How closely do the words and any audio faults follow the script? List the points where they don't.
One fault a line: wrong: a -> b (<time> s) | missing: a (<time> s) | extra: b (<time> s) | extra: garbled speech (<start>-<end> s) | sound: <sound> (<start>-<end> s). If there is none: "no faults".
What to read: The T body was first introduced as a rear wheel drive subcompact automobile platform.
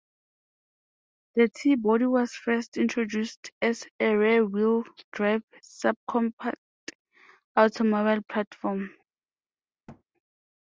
sound: thud (9.9-10.0 s)